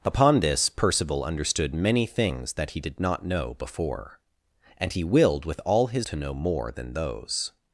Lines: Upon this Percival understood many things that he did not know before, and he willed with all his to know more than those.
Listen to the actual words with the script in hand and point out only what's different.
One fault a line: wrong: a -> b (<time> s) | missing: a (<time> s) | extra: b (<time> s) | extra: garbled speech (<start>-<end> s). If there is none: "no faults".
no faults